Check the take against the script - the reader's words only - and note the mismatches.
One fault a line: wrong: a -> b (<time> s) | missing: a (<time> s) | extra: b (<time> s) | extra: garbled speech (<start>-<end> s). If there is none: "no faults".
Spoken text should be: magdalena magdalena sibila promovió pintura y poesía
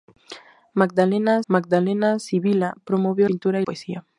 no faults